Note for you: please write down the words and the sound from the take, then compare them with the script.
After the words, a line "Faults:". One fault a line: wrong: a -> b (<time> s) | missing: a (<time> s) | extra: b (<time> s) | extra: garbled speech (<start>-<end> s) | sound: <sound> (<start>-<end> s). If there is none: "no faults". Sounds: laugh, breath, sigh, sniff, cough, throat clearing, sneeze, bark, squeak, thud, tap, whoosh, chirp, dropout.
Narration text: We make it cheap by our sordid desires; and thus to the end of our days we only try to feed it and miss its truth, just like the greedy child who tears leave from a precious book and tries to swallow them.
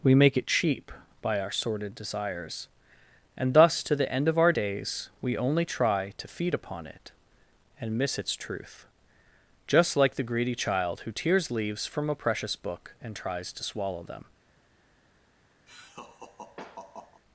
We make it cheap by our sordid desires; and thus to the end of our days we only try to feed upon it and miss its truth, just like the greedy child who tears leaves from a precious book and tries to swallow them.
Faults:
extra: upon (6.5 s)
wrong: leave -> leaves (11.5 s)
sound: laugh (15.7-17.2 s)